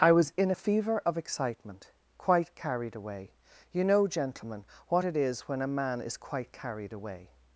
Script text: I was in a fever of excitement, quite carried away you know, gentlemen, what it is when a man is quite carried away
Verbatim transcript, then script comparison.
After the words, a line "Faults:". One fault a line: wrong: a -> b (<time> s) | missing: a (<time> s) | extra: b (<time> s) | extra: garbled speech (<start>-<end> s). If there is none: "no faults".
I was in a fever of excitement, quite carried away you know, gentlemen, what it is when a man is quite carried away
Faults:
no faults